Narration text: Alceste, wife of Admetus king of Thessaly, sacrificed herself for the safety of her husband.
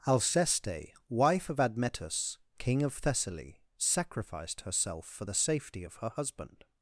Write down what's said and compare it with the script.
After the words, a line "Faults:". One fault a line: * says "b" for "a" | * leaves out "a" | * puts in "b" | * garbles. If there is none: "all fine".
Alceste, wife of Admetus king of Thessaly, sacrificed herself for the safety of her husband.
Faults:
all fine